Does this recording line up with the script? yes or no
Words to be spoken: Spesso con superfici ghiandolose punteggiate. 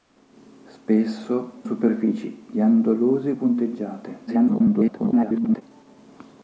no